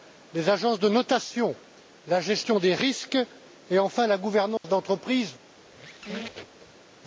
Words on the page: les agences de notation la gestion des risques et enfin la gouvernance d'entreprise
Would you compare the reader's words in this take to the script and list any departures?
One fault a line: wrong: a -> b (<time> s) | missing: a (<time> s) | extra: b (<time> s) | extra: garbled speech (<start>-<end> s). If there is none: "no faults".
no faults